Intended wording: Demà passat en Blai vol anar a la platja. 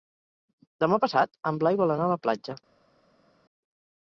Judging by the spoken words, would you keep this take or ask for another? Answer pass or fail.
pass